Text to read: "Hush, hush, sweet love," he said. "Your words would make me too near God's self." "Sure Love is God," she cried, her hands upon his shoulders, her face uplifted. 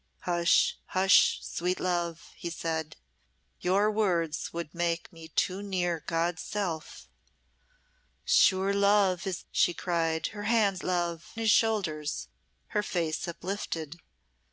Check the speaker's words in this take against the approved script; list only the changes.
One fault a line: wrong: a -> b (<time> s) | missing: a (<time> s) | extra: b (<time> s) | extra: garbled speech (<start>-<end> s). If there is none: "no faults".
missing: God (9.4 s)
wrong: upon -> love (10.8 s)